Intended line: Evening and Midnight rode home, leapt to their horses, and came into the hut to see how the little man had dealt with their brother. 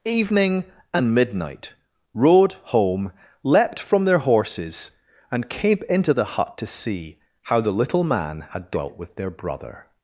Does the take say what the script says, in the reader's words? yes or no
no